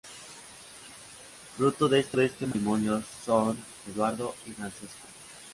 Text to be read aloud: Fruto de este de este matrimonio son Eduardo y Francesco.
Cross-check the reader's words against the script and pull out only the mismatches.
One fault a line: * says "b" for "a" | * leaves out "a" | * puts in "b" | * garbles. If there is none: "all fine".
all fine